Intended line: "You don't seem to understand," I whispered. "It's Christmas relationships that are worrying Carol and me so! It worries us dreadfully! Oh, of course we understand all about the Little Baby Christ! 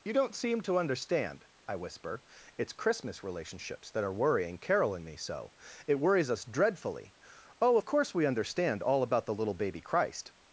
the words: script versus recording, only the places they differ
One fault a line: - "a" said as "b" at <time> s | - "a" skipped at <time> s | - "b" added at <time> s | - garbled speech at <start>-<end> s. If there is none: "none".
- "whispered" said as "whisper" at 1.8 s